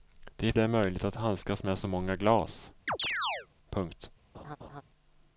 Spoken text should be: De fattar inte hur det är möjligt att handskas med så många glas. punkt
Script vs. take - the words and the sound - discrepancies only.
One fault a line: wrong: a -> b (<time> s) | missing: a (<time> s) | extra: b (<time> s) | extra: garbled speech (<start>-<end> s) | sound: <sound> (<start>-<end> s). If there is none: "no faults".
missing: fattar inte hur (0.5 s)
sound: chirp (2.9-3.5 s)
sound: laugh (4.3-4.8 s)